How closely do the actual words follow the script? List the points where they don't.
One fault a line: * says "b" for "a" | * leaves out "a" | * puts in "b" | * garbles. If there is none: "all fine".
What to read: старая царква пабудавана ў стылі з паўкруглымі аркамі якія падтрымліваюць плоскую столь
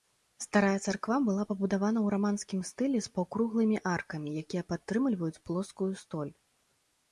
* puts in "была"
* puts in "раманскім"